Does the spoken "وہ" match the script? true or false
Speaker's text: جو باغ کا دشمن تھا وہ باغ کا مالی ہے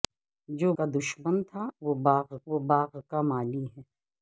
true